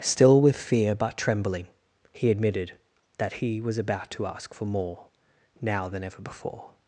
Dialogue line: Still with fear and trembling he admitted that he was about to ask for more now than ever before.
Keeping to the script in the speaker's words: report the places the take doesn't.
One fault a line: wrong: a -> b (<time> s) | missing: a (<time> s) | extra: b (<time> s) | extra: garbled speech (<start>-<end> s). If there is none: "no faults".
wrong: and -> but (0.9 s)